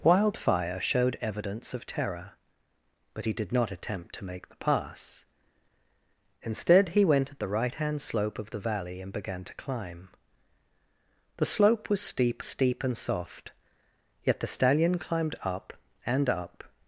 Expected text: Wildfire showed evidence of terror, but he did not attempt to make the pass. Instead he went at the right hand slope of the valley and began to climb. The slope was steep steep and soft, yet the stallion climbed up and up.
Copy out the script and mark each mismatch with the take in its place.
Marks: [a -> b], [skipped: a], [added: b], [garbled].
Wildfire showed evidence of terror, but he did not attempt to make the pass. Instead he went at the right hand slope of the valley and began to climb. The slope was steep steep and soft, yet the stallion climbed up and up.